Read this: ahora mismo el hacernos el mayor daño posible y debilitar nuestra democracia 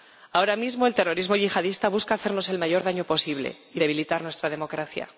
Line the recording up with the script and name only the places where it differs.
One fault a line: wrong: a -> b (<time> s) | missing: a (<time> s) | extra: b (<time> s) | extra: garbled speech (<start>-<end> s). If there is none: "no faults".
extra: terrorismo yihadista busca (0.9 s)